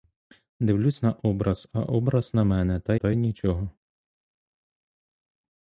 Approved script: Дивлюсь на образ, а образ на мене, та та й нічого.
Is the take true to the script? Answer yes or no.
yes